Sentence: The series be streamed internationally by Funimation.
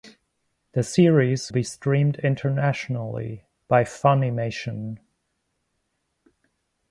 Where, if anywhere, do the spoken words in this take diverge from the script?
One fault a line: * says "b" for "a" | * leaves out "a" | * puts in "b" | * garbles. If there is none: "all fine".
all fine